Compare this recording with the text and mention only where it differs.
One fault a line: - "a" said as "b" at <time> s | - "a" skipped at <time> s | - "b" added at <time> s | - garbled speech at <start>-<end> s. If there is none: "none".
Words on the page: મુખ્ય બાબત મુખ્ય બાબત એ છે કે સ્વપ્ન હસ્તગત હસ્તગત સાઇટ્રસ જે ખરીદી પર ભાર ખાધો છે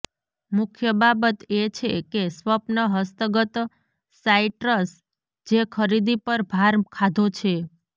- "મુખ્ય બાબત" skipped at 1.4 s
- "હસ્તગત" skipped at 3.6 s